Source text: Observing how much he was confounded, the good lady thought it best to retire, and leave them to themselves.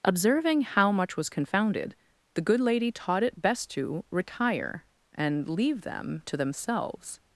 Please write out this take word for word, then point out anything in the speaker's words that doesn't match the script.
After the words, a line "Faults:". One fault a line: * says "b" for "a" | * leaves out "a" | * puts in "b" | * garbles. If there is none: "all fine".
Observing how much was confounded, the good lady taught it best to retire, and leave them to themselves.
Faults:
* leaves out "he"
* says "taught" for "thought"